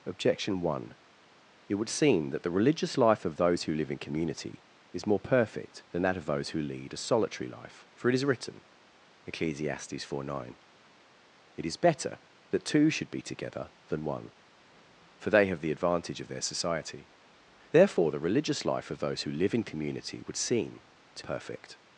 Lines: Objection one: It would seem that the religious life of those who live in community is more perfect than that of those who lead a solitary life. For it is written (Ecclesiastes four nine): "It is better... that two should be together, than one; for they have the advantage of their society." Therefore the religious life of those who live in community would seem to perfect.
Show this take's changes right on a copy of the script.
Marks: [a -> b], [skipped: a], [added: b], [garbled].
Objection one: It would seem that the religious life of those who live in community is more perfect than that of those who lead a solitary life. For it is written (Ecclesiastes four nine): "It is better... that two should be together, than one; for they have the advantage of their society." Therefore the religious life of those who live in community would seem to perfect.